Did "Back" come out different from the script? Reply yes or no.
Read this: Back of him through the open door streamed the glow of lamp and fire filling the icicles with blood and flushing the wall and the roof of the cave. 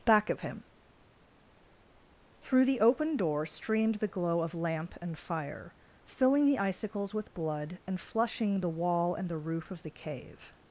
no